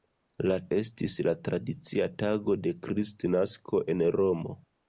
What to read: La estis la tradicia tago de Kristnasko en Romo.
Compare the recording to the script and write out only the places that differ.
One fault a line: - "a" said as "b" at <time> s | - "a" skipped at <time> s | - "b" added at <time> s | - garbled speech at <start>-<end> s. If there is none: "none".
none